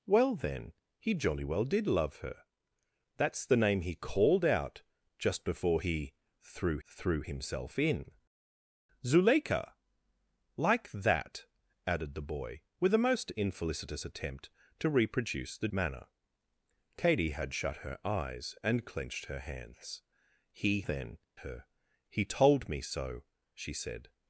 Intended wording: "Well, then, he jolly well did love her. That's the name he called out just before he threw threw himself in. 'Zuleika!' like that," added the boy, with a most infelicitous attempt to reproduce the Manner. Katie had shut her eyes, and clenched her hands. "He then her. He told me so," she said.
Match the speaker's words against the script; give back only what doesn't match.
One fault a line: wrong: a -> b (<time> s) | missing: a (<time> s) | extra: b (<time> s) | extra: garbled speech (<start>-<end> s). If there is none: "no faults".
no faults